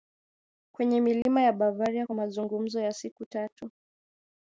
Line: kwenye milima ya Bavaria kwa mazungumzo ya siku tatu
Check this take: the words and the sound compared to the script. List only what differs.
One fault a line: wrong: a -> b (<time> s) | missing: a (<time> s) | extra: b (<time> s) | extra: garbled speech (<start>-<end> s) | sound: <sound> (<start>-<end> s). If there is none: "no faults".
sound: dropout (1.2-1.3 s)